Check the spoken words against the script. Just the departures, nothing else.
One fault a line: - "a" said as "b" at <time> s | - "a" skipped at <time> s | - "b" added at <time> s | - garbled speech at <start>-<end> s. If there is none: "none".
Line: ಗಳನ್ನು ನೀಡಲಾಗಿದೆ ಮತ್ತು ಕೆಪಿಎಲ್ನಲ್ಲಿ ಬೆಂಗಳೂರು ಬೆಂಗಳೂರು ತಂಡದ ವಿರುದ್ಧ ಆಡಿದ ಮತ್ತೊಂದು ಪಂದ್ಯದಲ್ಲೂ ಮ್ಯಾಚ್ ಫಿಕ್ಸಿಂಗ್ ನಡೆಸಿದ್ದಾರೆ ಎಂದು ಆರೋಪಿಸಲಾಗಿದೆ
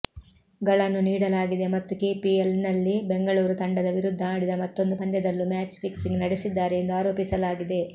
- "ಬೆಂಗಳೂರು" skipped at 3.6 s